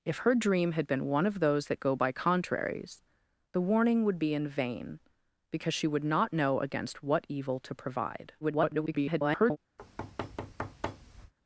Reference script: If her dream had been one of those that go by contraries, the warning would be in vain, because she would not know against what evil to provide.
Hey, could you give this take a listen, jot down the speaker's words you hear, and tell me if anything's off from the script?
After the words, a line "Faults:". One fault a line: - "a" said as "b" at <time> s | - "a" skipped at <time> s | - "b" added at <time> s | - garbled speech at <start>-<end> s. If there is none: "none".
If her dream had been one of those that go by contraries, the warning would be in vain, because she would not know against what evil to provide. [garbled]
Faults:
- garbled speech at 8.4-9.6 s